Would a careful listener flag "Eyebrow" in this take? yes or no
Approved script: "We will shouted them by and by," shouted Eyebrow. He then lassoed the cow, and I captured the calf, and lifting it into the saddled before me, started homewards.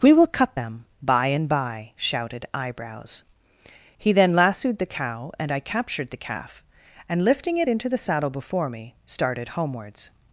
yes